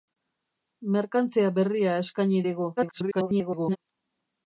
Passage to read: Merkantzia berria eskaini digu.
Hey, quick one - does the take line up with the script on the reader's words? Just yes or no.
no